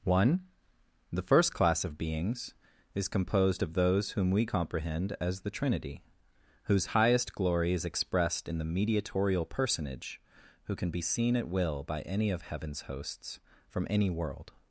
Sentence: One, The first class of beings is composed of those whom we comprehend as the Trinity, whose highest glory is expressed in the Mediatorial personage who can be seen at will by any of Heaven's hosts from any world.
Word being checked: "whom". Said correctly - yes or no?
yes